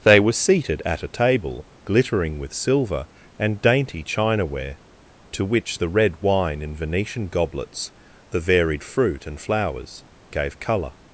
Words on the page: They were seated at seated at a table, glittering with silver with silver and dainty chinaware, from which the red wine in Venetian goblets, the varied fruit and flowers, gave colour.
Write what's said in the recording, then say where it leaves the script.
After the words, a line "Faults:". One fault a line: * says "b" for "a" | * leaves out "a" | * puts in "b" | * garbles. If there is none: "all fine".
They were seated at a table, glittering with silver and dainty chinaware, to which the red wine in Venetian goblets, the varied fruit and flowers, gave colour.
Faults:
* leaves out "seated at"
* leaves out "with silver"
* says "to" for "from"